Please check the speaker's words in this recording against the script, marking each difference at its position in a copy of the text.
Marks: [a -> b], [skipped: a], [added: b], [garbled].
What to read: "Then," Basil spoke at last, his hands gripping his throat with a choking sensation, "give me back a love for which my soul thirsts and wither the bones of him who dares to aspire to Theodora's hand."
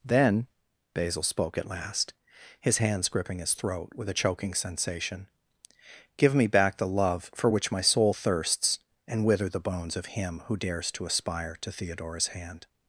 "Then," Basil spoke at last, his hands gripping his throat with a choking sensation, "give me back [a -> the] love for which my soul thirsts and wither the bones of him who dares to aspire to Theodora's hand."